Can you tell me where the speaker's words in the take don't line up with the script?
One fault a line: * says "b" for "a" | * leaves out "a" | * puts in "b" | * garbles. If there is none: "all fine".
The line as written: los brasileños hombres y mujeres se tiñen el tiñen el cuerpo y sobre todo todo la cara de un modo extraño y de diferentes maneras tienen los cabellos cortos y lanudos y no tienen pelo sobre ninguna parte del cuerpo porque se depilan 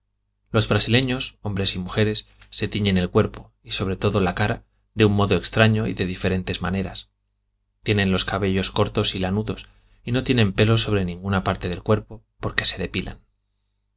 * leaves out "tiñen el"
* leaves out "todo"